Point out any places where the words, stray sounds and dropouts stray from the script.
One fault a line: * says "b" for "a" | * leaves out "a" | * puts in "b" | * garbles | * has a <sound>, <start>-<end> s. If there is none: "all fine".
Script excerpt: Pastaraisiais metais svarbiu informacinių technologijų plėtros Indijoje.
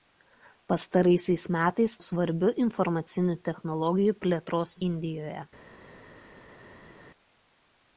all fine